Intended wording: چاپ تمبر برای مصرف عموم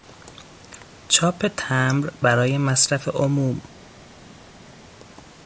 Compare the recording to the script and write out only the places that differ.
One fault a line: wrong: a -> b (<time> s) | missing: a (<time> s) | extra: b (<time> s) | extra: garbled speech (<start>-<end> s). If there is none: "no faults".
no faults